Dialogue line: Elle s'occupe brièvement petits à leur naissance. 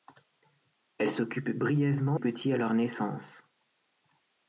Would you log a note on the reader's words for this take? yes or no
no